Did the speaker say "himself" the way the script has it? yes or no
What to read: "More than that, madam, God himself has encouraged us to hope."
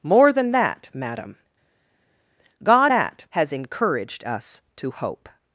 no